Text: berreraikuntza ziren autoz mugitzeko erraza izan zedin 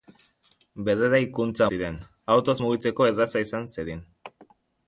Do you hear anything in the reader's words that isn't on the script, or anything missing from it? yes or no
no